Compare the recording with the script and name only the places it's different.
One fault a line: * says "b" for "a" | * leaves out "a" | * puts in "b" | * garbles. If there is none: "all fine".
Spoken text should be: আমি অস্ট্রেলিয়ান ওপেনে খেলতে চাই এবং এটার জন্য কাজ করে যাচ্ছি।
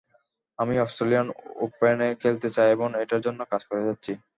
all fine